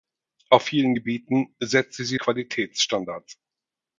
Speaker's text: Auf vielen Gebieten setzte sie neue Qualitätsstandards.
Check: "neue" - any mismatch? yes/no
yes